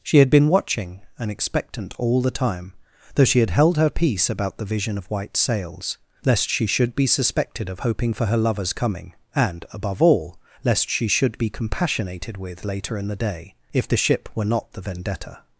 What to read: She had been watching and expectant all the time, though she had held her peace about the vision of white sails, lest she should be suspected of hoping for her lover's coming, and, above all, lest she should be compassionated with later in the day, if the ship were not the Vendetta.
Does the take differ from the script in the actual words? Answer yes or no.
no